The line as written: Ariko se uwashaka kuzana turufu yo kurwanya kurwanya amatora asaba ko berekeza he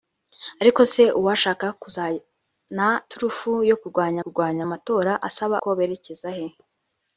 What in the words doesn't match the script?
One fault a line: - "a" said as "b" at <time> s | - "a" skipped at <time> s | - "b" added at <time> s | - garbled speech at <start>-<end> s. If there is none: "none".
none